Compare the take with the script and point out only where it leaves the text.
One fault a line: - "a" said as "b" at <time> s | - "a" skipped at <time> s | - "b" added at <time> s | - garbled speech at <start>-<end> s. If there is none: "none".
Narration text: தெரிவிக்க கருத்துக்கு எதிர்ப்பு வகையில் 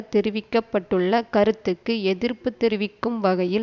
- "பட்டுள்ள" added at 0.7 s
- "தெரிவிக்கும்" added at 2.6 s